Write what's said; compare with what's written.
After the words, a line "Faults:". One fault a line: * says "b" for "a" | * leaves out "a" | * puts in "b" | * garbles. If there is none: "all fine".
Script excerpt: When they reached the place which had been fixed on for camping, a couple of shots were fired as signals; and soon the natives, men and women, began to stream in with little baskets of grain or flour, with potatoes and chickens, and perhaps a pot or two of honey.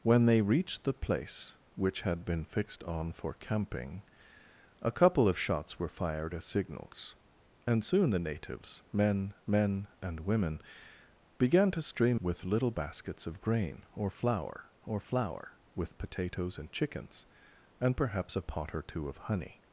When they reached the place which had been fixed on for camping, a couple of shots were fired as signals; and soon the natives, men men and women, began to stream with little baskets of grain or flour or flour, with potatoes and chickens, and perhaps a pot or two of honey.
Faults:
* puts in "men"
* leaves out "in"
* puts in "or flour"